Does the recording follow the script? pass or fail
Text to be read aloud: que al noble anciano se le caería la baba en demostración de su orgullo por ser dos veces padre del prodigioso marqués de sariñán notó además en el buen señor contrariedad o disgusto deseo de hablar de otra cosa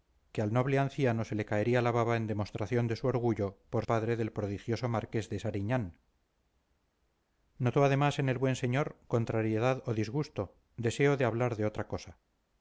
fail